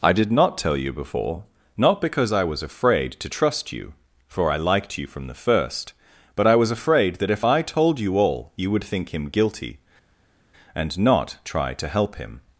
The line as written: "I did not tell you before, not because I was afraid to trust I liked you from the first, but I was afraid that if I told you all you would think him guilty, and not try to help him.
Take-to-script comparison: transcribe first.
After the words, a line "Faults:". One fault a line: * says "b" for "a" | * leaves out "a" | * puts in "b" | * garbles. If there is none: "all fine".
"I did not tell you before, not because I was afraid to trust you, for I liked you from the first, but I was afraid that if I told you all you would think him guilty, and not try to help him.
Faults:
* puts in "you for"